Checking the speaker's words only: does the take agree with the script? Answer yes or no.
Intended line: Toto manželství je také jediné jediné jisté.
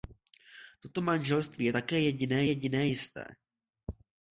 yes